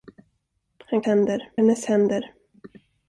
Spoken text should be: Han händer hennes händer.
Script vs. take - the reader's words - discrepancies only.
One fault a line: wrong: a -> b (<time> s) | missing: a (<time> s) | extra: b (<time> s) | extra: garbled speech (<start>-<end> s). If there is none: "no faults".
no faults